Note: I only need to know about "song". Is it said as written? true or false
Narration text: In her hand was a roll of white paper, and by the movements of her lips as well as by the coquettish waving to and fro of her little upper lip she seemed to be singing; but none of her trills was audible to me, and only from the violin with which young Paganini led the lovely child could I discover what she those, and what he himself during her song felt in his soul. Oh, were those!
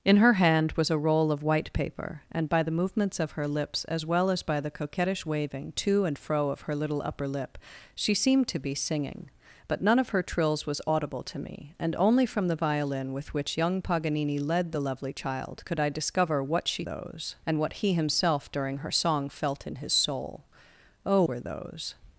true